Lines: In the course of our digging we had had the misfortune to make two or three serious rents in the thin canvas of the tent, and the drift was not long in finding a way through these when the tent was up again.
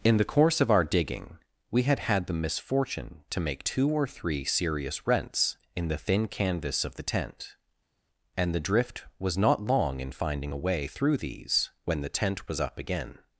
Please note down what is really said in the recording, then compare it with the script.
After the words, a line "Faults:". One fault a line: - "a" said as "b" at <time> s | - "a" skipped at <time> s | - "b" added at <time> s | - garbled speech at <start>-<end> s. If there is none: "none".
In the course of our digging we had had the misfortune to make two or three serious rents in the thin canvas of the tent, and the drift was not long in finding a way through these when the tent was up again.
Faults:
none